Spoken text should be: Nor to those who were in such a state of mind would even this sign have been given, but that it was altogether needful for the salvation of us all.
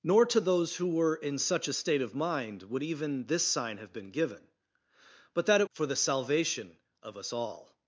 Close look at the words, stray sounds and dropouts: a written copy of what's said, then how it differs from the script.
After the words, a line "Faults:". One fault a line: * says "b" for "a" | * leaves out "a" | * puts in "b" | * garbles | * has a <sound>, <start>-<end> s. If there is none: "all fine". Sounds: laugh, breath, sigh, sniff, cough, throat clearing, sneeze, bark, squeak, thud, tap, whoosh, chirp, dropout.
Nor to those who were in such a state of mind would even this sign have been given, but that it for the salvation of us all.
Faults:
* leaves out "was altogether needful"